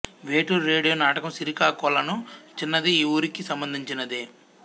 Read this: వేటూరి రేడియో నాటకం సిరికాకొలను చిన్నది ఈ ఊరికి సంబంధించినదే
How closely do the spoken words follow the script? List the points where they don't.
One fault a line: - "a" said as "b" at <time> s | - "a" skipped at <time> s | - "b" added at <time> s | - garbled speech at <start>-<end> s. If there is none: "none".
none